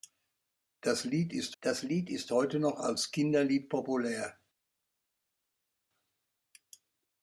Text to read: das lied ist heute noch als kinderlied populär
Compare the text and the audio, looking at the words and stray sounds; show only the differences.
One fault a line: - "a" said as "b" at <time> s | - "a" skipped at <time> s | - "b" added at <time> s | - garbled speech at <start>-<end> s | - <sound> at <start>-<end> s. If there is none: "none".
- "das lied ist" added at 1.6 s